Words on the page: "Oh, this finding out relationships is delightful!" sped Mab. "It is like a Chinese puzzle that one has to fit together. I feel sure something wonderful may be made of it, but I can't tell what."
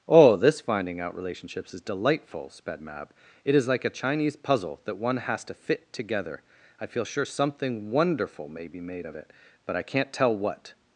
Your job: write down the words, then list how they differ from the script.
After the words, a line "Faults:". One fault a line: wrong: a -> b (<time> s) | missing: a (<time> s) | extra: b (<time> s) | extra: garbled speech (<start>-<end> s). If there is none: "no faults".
"Oh, this finding out relationships is delightful!" sped Mab. "It is like a Chinese puzzle that one has to fit together. I feel sure something wonderful may be made of it, but I can't tell what."
Faults:
no faults